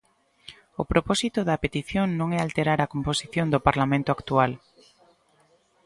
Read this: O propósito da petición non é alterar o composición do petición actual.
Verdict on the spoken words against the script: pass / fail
fail